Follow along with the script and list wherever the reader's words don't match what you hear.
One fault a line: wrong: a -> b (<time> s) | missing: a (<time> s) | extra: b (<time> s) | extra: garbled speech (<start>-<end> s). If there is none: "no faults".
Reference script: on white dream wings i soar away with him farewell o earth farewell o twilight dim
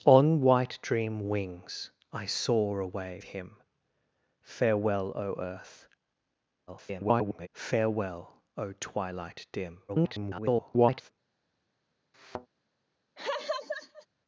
missing: with (3.2 s)
extra: garbled speech (6.7-7.5 s)
extra: garbled speech (9.9-11.1 s)